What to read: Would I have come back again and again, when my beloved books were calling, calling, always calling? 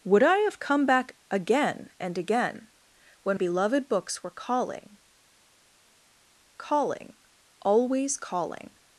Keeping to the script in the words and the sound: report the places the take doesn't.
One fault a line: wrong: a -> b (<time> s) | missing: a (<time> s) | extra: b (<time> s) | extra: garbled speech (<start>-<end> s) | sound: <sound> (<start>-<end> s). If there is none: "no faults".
missing: my (3.4 s)